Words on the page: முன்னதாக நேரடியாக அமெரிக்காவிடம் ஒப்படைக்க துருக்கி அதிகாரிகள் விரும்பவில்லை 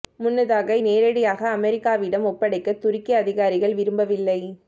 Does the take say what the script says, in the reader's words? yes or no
yes